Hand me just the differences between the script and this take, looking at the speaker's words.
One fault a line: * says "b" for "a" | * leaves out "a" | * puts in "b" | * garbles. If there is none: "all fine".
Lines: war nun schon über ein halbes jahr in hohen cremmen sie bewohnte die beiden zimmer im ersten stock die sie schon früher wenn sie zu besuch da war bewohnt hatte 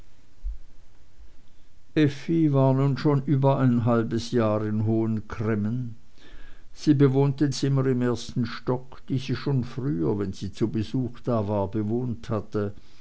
* leaves out "die beiden"